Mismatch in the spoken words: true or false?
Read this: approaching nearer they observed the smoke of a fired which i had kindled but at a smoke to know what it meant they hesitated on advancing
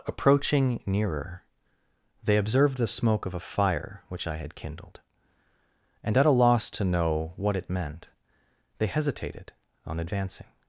true